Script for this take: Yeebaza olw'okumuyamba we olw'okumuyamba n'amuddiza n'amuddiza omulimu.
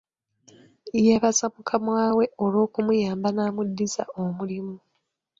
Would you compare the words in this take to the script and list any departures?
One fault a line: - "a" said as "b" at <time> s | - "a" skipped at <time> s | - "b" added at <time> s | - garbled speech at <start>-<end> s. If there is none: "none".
- "olw'okumuyamba" said as "mukama" at 1.6 s
- "n'amuddiza" skipped at 4.0 s